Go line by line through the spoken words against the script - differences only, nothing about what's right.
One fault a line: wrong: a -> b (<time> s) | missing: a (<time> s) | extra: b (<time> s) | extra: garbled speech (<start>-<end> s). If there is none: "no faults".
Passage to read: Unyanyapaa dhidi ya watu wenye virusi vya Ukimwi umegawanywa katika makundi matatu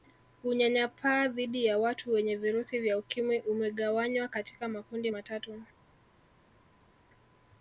no faults